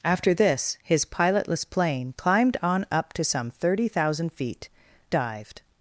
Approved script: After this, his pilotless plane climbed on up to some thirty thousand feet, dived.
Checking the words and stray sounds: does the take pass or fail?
pass